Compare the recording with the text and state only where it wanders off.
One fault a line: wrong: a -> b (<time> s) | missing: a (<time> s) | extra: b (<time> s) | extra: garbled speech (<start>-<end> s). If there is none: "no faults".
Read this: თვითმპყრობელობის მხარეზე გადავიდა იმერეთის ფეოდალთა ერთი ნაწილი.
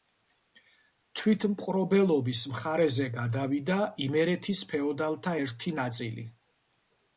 no faults